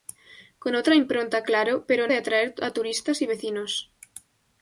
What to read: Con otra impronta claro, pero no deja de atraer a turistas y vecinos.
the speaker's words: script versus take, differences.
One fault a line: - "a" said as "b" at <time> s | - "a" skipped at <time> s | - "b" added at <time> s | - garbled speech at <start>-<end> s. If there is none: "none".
- "no deja" skipped at 2.1 s